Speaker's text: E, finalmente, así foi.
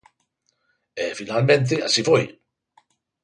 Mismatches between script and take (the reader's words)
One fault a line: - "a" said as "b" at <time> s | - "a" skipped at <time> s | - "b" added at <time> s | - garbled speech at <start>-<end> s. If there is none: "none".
none